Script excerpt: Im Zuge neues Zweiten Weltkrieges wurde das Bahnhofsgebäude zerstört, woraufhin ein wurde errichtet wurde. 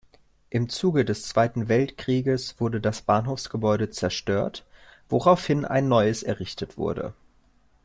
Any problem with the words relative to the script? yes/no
yes